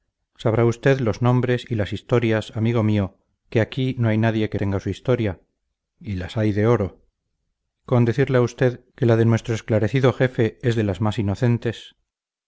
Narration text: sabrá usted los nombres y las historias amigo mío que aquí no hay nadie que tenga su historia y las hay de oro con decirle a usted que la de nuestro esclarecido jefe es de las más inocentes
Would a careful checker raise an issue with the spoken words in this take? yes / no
no